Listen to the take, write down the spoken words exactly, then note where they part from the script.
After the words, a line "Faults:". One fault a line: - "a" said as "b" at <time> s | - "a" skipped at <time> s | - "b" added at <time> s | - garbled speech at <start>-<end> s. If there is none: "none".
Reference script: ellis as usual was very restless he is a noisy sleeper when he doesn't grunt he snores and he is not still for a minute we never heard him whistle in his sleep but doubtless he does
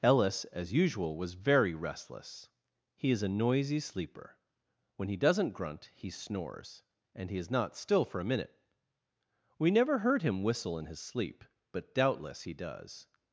ellis as usual was very restless he is a noisy sleeper when he doesn't grunt he snores and he is not still for a minute we never heard him whistle in his sleep but doubtless he does
Faults:
none